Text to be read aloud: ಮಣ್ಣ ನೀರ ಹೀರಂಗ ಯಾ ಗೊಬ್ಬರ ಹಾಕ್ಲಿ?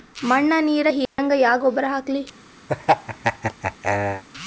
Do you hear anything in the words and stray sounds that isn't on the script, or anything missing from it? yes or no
yes